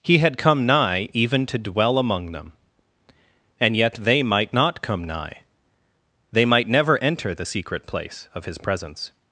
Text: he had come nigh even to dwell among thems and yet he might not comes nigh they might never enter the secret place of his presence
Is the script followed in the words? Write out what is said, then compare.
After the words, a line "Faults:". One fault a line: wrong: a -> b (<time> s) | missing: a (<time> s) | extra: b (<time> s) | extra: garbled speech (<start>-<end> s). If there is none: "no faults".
he had come nigh even to dwell among them and yet they might not come nigh they might never enter the secret place of his presence
Faults:
wrong: thems -> them (2.3 s)
wrong: he -> they (3.9 s)
wrong: comes -> come (4.8 s)